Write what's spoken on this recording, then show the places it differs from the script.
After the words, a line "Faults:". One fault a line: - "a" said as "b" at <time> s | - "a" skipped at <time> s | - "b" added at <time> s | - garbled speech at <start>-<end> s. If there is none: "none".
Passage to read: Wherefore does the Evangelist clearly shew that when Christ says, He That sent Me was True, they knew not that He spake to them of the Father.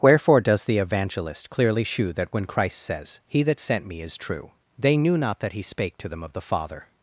Wherefore does the Evangelist clearly shew that when Christ says, He That sent Me is True, they knew not that He spake to them of the Father.
Faults:
- "was" said as "is" at 4.0 s